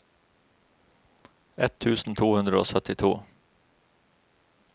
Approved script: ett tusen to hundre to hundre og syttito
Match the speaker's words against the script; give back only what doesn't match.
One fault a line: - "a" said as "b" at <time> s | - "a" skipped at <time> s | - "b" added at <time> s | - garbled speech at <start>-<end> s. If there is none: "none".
- "to hundre" skipped at 2.6 s